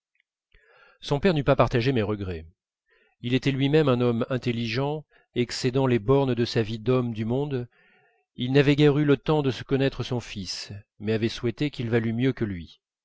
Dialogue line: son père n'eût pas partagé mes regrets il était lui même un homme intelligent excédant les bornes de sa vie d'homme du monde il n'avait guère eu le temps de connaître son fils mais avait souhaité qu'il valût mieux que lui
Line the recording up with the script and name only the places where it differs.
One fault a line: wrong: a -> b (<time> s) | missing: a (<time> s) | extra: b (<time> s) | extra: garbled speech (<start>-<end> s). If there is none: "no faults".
no faults